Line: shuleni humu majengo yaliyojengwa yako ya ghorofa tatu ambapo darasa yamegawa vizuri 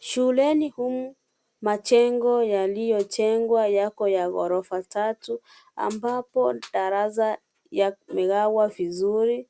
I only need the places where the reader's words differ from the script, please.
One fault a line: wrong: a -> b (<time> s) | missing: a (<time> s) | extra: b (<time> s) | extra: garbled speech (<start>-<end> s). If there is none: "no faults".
no faults